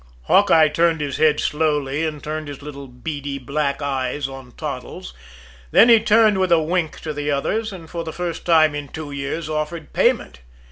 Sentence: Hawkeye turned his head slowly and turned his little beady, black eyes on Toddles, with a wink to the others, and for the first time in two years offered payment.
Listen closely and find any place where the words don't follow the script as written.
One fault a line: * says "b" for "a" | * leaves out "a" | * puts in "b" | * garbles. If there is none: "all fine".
* puts in "then he turned"